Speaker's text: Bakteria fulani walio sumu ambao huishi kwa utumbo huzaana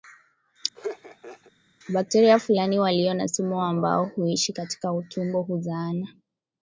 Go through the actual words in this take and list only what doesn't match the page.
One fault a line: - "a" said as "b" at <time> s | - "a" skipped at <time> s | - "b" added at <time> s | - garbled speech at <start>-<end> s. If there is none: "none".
- "na" added at 3.1 s
- "kwa" said as "katika" at 4.5 s